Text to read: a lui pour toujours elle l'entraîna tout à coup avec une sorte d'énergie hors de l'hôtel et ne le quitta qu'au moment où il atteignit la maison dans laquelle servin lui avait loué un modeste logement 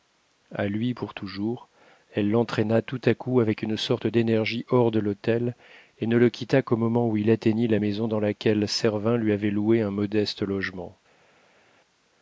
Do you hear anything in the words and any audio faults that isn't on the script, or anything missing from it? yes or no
no